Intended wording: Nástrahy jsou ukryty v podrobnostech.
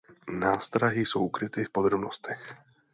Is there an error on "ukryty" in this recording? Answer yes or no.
no